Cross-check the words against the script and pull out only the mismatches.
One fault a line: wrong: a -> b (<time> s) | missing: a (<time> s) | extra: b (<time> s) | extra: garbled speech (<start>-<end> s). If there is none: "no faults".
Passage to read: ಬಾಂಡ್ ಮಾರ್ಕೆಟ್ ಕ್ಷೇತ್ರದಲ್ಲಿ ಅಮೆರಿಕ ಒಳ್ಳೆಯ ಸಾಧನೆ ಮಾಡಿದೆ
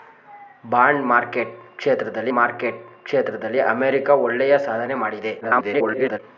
extra: ಮಾರ್ಕೆಟ್ ಕ್ಷೇತ್ರದಲ್ಲಿ (2.3 s)
extra: garbled speech (5.4-6.2 s)